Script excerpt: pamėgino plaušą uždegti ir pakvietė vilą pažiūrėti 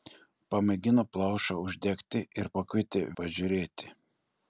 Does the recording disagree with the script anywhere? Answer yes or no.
yes